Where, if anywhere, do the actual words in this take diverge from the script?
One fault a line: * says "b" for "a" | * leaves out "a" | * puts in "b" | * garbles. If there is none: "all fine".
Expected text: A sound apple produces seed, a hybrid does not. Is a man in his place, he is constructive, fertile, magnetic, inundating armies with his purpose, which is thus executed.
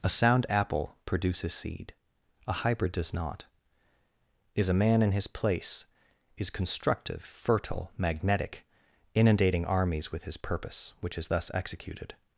* leaves out "he"